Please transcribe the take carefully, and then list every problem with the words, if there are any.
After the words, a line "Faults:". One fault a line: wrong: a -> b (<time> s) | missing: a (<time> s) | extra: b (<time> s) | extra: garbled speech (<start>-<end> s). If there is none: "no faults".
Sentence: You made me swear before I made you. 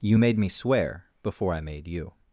You made me swear before I made you.
Faults:
no faults